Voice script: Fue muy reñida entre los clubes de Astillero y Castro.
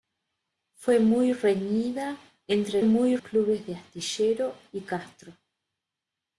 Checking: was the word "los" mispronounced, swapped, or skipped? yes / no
yes